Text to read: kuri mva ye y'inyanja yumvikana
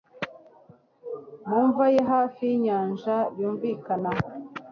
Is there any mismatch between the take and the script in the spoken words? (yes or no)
yes